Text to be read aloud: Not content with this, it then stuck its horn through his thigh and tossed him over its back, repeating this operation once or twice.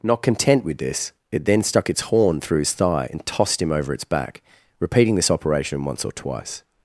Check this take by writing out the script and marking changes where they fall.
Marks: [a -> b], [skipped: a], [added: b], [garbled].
Not content with this, it then stuck its horn through his thigh and tossed him over its back, repeating this operation once or twice.